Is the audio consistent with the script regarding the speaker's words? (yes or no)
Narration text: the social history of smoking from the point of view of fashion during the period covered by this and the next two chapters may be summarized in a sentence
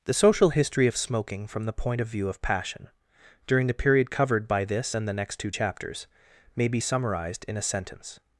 no